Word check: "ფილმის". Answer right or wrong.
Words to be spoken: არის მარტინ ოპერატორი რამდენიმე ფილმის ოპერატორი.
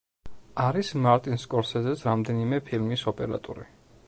right